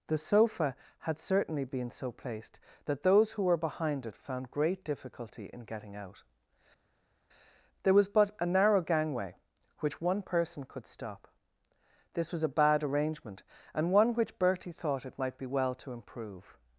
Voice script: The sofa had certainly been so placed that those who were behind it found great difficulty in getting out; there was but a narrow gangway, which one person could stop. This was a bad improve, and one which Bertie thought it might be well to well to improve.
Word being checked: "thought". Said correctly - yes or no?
yes